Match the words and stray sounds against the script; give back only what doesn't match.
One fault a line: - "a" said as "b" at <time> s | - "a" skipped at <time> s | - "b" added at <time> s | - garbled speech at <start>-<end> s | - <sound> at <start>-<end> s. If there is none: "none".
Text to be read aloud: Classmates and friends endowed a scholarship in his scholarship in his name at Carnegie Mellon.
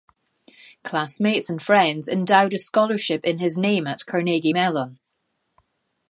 - "scholarship in his" skipped at 3.6 s